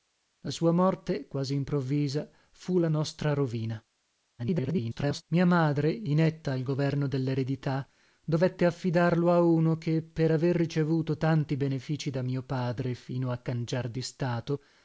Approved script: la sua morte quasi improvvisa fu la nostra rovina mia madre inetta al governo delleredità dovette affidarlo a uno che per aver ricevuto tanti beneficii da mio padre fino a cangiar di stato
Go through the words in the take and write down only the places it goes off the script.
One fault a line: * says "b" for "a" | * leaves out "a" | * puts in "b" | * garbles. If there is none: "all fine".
* garbles